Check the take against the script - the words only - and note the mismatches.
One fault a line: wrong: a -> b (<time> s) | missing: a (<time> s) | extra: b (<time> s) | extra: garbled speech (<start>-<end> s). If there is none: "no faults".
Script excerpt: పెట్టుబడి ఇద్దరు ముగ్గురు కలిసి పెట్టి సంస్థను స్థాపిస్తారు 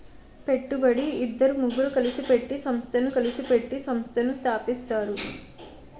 extra: కలిసి పెట్టి సంస్థను (3.1 s)